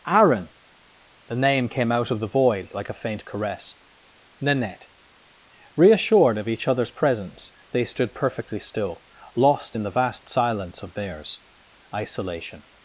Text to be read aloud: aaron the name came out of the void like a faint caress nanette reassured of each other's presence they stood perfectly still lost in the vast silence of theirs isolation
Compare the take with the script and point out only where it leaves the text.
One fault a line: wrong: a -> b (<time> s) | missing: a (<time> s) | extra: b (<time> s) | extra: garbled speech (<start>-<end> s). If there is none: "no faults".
no faults